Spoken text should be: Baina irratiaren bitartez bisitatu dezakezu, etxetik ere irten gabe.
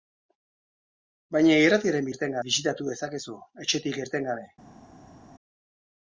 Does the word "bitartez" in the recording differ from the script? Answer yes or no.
yes